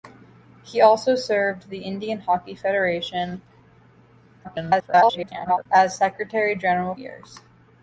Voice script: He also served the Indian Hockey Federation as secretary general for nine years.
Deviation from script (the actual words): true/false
true